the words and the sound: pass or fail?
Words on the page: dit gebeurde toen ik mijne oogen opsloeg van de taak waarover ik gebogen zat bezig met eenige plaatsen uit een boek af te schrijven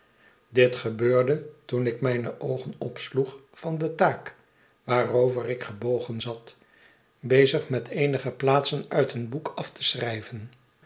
pass